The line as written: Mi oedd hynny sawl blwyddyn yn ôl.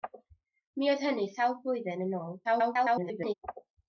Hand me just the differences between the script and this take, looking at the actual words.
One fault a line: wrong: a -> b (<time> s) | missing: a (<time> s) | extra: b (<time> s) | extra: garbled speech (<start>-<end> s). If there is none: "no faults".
extra: garbled speech (2.4-3.3 s)